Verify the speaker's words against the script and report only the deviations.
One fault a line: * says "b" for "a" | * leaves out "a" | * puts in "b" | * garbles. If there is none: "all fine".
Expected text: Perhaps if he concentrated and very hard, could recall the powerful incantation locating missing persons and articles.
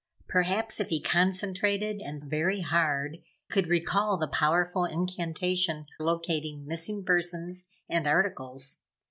all fine